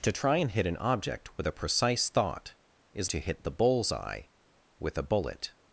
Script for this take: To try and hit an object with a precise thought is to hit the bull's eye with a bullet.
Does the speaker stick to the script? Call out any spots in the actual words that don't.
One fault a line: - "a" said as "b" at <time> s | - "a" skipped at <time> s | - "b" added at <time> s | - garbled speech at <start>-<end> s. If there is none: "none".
none